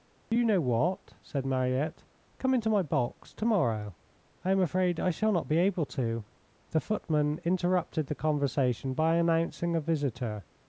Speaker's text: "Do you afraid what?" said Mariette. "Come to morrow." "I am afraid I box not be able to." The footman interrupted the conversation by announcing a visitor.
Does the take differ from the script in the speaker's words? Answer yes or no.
yes